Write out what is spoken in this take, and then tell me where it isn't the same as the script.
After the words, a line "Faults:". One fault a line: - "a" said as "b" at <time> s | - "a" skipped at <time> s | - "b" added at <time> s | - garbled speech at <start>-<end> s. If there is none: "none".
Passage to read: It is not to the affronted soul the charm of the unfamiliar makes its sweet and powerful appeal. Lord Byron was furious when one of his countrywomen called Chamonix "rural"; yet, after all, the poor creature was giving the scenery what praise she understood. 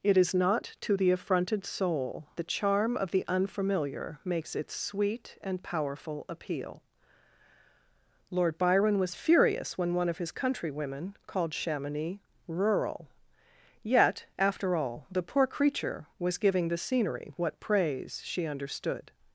It is not to the affronted soul the charm of the unfamiliar makes its sweet and powerful appeal. Lord Byron was furious when one of his countrywomen called Chamonix "rural"; yet, after all, the poor creature was giving the scenery what praise she understood.
Faults:
none